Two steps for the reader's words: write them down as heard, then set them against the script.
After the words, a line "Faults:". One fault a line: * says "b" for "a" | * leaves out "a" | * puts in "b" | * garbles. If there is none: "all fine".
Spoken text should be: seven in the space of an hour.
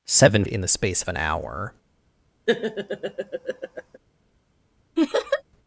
seven in the space of an hour.
Faults:
all fine